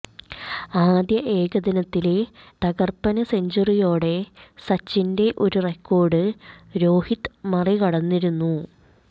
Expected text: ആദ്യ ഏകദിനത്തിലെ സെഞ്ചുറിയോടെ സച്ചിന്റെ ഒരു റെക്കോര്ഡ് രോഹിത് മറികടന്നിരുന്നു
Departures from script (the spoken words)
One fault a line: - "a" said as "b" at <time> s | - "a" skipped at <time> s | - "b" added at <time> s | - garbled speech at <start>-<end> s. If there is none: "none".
- "തകര്പ്പന്" added at 2.6 s